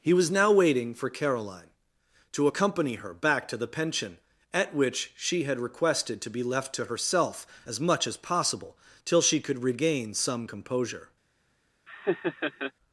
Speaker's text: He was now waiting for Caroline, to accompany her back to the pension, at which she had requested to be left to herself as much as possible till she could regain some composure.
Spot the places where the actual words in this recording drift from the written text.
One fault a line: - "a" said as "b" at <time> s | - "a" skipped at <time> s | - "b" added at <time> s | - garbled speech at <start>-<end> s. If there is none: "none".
none